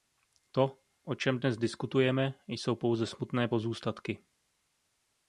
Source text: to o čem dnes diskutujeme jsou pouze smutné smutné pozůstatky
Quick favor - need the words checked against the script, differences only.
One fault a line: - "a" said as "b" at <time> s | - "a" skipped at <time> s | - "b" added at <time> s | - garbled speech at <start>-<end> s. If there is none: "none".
- "smutné" skipped at 3.5 s